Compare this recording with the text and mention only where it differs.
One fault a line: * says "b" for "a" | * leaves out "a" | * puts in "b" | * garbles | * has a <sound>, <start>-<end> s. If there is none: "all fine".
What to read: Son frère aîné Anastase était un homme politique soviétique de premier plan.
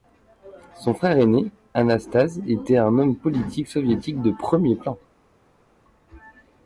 all fine